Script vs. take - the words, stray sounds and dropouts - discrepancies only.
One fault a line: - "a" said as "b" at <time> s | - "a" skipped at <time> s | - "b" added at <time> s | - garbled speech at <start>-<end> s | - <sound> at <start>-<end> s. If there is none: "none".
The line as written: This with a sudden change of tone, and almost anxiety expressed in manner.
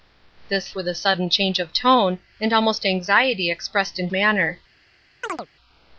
- chirp at 5.2-5.5 s